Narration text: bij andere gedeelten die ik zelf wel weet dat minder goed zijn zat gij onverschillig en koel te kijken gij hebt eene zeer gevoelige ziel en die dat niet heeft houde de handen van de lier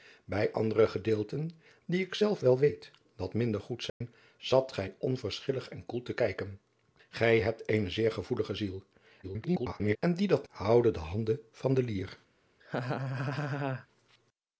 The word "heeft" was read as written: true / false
false